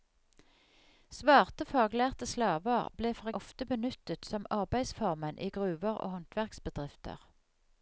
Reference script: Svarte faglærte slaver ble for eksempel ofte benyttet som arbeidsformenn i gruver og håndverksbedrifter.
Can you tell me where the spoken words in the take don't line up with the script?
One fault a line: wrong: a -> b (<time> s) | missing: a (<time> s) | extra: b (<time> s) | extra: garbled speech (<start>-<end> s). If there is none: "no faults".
missing: eksempel (3.3 s)